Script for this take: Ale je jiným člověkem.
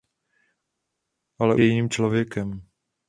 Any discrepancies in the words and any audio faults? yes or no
no